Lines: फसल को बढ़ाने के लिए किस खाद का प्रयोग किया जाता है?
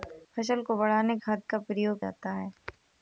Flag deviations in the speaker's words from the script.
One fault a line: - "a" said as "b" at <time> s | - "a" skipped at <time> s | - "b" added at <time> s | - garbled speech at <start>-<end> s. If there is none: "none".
- "के लिए किस" skipped at 1.2 s
- "किया" skipped at 2.0 s